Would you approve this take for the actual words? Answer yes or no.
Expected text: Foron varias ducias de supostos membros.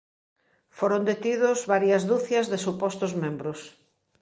no